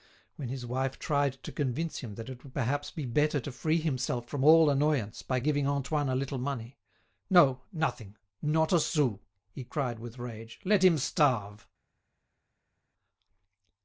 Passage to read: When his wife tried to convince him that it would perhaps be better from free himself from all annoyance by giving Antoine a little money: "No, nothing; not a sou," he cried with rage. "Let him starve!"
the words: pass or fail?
fail